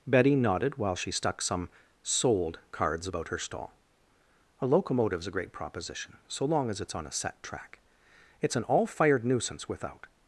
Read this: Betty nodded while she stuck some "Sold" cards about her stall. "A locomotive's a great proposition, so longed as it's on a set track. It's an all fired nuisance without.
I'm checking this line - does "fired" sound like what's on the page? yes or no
yes